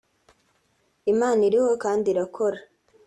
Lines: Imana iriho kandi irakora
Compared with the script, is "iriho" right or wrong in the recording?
right